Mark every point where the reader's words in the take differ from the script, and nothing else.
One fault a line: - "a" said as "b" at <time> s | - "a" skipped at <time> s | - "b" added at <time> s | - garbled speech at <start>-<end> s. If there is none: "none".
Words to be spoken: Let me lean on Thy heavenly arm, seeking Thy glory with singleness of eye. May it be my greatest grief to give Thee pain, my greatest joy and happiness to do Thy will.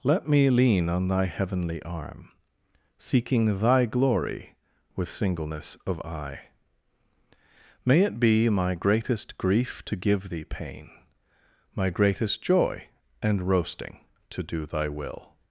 - "happiness" said as "roasting" at 13.4 s